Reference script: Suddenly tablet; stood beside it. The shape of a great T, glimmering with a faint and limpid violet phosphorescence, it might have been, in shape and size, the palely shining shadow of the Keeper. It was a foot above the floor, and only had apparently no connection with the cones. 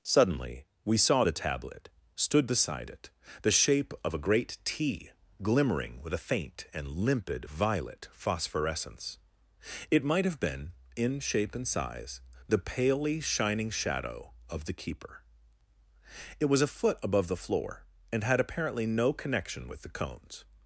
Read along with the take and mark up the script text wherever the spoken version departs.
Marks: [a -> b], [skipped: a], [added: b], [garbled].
Suddenly [added: we saw the] tablet; stood beside it. The shape of a great T, glimmering with a faint and limpid violet phosphorescence, it might have been, in shape and size, the palely shining shadow of the Keeper. It was a foot above the floor, and [skipped: only] had apparently no connection with the cones.